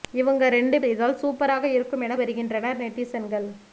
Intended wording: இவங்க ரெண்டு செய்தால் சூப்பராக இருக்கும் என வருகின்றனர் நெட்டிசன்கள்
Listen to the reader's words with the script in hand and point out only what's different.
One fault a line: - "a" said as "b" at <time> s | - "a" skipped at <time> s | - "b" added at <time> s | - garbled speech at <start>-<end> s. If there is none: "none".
none